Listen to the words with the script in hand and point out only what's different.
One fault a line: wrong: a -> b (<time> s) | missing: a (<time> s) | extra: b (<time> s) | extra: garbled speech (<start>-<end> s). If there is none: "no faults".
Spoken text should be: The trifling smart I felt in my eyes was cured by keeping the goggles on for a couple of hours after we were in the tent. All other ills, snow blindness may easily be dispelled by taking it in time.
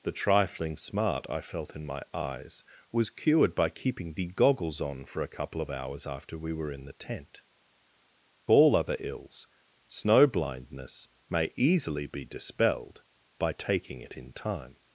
no faults